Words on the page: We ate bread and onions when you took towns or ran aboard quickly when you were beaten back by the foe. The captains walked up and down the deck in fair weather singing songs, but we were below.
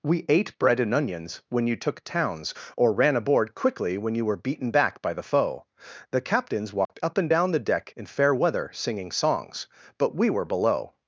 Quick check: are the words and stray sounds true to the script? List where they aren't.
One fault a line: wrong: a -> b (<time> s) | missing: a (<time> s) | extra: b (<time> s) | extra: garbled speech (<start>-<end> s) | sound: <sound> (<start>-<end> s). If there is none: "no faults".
sound: dropout (6.9-6.9 s)